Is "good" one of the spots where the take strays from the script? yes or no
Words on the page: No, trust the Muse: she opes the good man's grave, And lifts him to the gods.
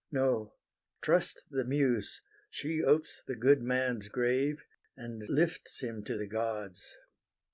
no